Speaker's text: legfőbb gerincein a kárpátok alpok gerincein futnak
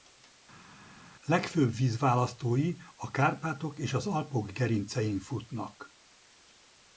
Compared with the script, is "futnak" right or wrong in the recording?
right